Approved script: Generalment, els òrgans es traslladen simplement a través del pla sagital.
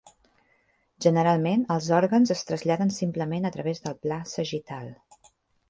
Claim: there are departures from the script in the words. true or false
false